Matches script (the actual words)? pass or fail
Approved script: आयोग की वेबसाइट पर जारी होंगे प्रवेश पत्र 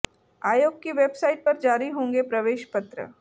pass